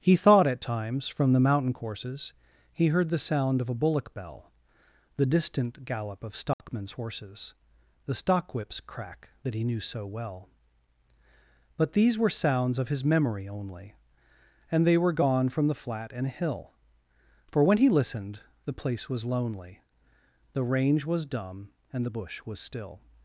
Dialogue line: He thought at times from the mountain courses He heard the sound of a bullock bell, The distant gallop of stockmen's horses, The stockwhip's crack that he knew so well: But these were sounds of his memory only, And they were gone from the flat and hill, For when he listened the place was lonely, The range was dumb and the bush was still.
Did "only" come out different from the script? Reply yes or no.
no